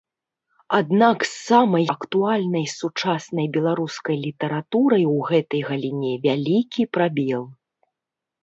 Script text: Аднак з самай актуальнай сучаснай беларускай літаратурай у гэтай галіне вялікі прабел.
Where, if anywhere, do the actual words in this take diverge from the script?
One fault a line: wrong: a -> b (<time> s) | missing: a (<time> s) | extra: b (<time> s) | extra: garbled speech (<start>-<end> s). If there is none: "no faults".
no faults